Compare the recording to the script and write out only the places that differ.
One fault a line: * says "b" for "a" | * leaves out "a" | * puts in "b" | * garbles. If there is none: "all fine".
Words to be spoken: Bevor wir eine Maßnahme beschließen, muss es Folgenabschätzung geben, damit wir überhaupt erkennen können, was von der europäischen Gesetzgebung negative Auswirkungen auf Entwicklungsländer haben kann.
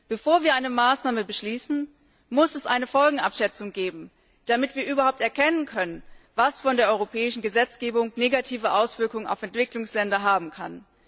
* puts in "eine"